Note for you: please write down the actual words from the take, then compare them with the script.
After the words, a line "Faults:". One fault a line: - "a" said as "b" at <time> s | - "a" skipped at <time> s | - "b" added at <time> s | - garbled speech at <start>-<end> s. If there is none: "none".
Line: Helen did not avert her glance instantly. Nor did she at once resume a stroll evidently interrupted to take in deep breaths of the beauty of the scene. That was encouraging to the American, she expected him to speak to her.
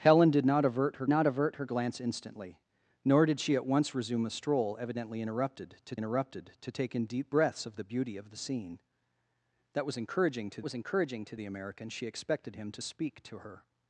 Helen did not avert her not avert her glance instantly. Nor did she at once resume a stroll evidently interrupted to interrupted to take in deep breaths of the beauty of the scene. That was encouraging to was encouraging to the American, she expected him to speak to her.
Faults:
- "not avert her" added at 1.1 s
- "interrupted to" added at 6.0 s
- "was encouraging to" added at 10.6 s